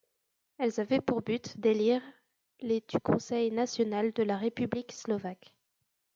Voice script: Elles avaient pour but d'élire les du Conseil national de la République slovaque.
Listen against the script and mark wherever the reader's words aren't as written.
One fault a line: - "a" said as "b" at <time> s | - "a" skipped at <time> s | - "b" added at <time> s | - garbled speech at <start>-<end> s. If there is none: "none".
none